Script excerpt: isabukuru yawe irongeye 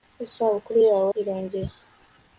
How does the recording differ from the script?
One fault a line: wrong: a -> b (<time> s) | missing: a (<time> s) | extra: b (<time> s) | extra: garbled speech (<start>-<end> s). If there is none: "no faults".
no faults